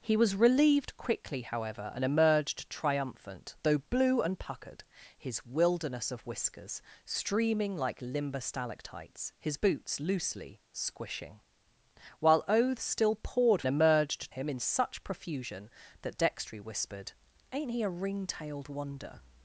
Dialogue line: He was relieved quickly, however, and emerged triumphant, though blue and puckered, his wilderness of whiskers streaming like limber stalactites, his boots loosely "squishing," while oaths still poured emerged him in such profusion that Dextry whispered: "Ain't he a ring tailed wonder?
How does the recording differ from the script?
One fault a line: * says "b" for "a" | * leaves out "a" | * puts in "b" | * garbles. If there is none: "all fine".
all fine